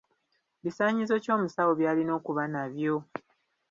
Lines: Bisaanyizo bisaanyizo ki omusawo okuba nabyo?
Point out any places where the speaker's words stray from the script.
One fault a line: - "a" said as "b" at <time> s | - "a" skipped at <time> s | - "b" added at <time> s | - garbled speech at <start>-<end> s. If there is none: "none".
- "bisaanyizo" skipped at 1.1 s
- "by'alina" added at 1.8 s